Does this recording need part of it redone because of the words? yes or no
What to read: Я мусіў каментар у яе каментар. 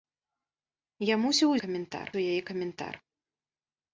no